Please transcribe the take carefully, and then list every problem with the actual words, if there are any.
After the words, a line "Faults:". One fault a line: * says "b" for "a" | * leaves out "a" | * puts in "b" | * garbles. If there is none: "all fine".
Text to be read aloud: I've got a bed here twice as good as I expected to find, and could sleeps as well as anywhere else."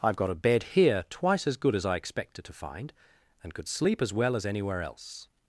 I've got a bed here twice as good as I expected to find, and could sleep as well as anywhere else."
Faults:
* says "sleep" for "sleeps"